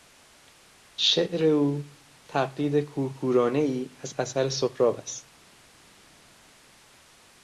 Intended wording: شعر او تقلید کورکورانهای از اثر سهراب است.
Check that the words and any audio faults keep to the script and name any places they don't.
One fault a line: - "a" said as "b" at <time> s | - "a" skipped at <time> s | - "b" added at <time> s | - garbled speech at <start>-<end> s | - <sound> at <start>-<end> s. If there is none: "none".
none